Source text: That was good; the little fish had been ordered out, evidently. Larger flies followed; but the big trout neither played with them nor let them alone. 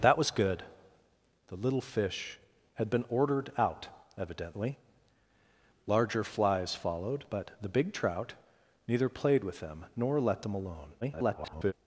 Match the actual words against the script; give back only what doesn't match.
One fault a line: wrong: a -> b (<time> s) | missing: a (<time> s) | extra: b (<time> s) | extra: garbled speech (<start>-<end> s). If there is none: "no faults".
extra: garbled speech (11.0-11.7 s)